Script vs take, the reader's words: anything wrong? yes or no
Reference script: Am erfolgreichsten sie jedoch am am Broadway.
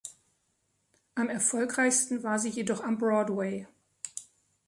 yes